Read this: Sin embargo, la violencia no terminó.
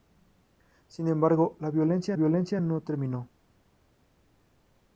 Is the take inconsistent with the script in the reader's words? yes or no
yes